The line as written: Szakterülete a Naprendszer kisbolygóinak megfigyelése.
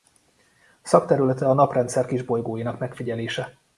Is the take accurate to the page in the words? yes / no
yes